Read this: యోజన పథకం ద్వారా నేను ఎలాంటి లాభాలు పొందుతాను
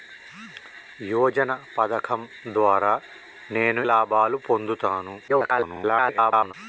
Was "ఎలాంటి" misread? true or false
true